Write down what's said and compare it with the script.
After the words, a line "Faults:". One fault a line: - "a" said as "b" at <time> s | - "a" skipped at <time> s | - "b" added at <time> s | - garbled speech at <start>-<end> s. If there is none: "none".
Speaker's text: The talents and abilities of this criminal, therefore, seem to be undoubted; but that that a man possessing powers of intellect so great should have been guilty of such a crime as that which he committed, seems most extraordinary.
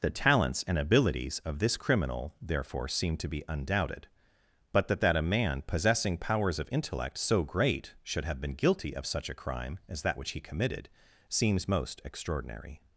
The talents and abilities of this criminal, therefore, seem to be undoubted; but that that a man possessing powers of intellect so great should have been guilty of such a crime as that which he committed, seems most extraordinary.
Faults:
none